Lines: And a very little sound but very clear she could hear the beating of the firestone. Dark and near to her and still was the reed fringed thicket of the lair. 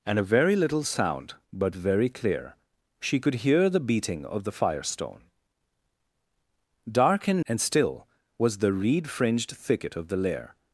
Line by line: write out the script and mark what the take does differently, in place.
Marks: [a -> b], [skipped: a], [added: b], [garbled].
And a very little sound but very clear she could hear the beating of the firestone. Dark and [skipped: near to her] and still was the reed fringed thicket of the lair.